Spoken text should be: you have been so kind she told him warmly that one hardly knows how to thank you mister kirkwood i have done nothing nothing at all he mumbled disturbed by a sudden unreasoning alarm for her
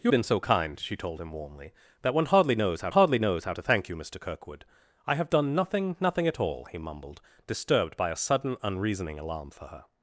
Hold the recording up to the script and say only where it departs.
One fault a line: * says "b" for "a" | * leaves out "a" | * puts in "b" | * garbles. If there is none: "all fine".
* leaves out "have"
* puts in "hardly knows how"